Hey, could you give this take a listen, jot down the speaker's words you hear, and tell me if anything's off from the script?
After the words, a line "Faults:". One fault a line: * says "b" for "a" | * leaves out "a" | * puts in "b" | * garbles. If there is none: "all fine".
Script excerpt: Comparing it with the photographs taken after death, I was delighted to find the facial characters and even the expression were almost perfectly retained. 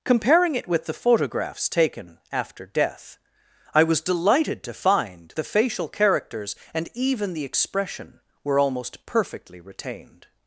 Comparing it with the photographs taken after death, I was delighted to find the facial characters and even the expression were almost perfectly retained.
Faults:
all fine